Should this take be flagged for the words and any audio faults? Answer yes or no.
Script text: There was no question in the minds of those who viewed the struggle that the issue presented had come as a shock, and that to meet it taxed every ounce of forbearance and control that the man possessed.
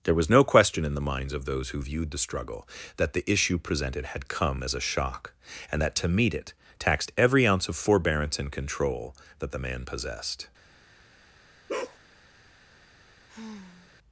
yes